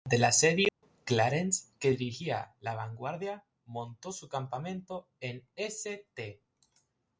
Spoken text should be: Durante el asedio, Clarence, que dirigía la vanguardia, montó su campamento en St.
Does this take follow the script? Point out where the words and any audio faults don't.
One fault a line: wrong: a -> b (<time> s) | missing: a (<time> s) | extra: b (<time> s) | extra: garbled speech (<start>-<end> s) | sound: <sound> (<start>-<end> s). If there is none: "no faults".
sound: dropout (0.7-0.8 s)